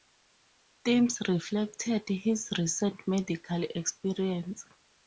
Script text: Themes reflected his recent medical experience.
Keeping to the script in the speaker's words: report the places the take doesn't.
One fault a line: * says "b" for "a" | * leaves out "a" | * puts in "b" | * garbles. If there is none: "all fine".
all fine